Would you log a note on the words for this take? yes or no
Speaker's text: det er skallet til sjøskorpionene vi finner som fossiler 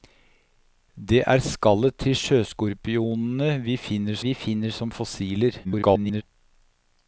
yes